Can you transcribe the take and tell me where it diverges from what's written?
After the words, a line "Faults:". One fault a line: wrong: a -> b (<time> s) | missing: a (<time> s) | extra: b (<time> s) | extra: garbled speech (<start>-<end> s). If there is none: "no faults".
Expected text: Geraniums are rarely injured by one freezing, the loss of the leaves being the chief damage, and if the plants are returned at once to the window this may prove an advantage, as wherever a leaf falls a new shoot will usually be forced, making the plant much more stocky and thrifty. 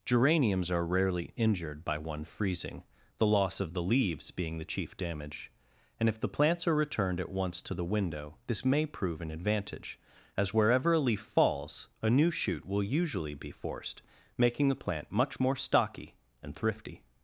Geraniums are rarely injured by one freezing, the loss of the leaves being the chief damage, and if the plants are returned at once to the window this may prove an advantage, as wherever a leaf falls a new shoot will usually be forced, making the plant much more stocky and thrifty.
Faults:
no faults